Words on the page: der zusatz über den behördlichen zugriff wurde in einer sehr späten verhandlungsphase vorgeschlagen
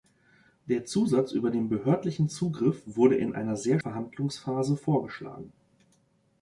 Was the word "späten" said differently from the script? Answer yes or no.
yes